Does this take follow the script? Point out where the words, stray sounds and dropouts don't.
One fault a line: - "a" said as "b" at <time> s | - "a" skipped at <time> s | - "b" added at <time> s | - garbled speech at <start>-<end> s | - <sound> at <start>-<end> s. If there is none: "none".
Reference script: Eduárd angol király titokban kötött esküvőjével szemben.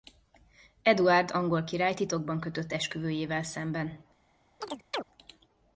- chirp at 4.6-5.0 s